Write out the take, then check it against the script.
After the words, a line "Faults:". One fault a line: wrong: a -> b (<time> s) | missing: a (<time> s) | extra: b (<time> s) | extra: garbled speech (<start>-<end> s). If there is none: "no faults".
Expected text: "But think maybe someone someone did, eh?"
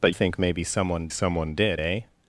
"But think maybe someone someone did, eh?"
Faults:
no faults